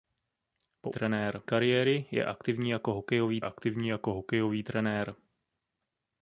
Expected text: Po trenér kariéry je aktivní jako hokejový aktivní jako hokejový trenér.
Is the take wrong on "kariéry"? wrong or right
right